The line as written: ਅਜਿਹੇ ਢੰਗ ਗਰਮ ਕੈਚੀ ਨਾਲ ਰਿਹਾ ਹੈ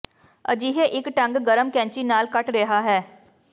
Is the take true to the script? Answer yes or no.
no